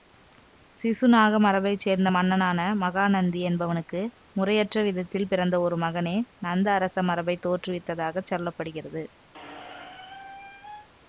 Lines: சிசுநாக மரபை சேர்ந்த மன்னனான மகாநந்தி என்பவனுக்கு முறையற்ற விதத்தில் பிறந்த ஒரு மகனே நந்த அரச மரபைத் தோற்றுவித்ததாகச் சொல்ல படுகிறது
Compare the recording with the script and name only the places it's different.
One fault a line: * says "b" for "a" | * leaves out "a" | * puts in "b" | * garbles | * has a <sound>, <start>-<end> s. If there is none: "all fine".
* has a squeak, 9.3-10.9 s